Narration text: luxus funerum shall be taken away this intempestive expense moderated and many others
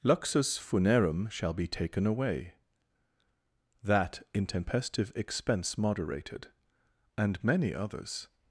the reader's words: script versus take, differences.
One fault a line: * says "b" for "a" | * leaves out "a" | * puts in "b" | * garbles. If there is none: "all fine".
* says "that" for "this"